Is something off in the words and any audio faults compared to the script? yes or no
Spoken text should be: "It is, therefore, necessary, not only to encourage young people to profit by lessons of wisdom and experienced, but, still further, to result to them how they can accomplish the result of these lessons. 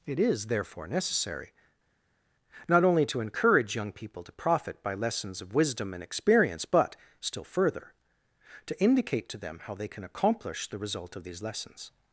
yes